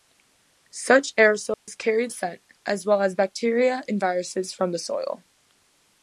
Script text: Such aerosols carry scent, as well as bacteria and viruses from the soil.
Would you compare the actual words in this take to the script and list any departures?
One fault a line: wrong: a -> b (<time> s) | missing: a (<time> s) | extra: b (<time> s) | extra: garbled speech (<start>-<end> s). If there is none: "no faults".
no faults